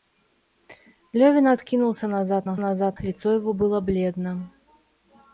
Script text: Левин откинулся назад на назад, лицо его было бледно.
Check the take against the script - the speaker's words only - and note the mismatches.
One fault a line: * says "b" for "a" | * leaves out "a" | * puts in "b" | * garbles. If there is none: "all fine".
all fine